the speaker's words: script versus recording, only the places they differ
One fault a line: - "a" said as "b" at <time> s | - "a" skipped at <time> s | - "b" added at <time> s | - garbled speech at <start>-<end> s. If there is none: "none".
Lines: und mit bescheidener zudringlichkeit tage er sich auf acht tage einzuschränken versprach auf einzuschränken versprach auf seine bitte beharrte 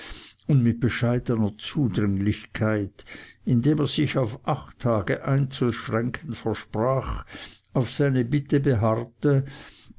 - "tage" said as "indem" at 3.4 s
- "einzuschränken versprach auf" skipped at 7.9 s